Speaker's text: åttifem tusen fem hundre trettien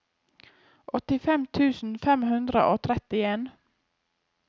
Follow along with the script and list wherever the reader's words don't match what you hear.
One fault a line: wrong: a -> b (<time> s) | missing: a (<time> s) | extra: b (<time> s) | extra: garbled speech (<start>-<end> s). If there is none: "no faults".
extra: og (2.7 s)